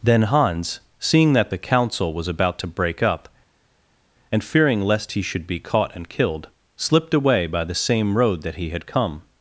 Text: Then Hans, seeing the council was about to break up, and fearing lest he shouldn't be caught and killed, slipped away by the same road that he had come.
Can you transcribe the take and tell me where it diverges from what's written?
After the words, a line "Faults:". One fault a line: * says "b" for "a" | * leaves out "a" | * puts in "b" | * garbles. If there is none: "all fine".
Then Hans, seeing that the council was about to break up, and fearing lest he should be caught and killed, slipped away by the same road that he had come.
Faults:
* puts in "that"
* says "should" for "shouldn't"